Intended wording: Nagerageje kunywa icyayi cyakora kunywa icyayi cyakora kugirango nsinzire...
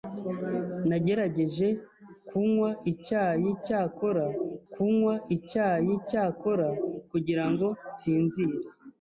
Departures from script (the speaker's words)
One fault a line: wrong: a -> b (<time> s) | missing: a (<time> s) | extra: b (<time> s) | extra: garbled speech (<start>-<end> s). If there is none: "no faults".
no faults